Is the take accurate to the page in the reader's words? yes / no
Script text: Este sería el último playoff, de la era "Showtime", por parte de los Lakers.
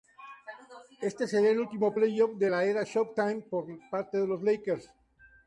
yes